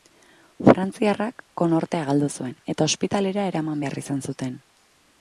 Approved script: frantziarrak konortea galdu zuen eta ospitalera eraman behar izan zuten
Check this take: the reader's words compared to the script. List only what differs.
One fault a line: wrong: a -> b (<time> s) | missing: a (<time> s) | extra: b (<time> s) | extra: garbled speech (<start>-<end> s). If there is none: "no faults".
no faults